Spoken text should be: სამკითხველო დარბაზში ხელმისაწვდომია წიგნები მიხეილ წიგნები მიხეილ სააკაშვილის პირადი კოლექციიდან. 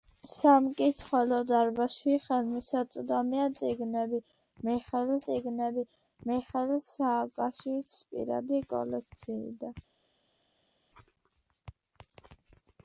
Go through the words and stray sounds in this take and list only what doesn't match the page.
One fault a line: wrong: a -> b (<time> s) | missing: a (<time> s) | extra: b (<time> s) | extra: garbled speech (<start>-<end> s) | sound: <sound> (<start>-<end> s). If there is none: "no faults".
no faults